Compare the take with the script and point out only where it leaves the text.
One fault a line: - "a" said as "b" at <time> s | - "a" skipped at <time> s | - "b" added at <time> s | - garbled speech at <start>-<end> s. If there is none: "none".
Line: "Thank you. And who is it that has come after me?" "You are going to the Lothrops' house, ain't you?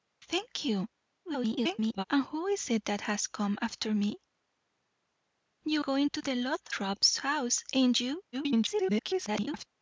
- garbled speech at 1.2-2.0 s
- "are" skipped at 5.8 s
- garbled speech at 8.3-9.7 s